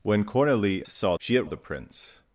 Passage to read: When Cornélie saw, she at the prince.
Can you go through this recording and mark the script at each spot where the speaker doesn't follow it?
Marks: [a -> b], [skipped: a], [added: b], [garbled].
When Cornélie saw, she at the prince.